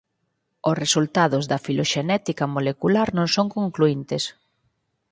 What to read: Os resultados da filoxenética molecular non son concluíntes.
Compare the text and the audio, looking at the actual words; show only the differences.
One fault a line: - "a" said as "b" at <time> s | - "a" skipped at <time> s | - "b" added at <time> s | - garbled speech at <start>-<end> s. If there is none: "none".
none